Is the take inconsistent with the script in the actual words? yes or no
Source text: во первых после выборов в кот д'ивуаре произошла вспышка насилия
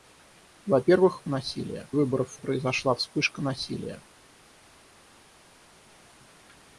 yes